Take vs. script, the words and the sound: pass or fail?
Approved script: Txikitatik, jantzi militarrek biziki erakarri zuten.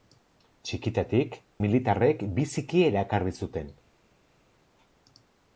fail